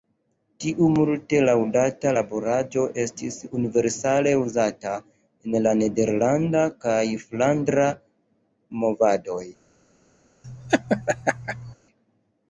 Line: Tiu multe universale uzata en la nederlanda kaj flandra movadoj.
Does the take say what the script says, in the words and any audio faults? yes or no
no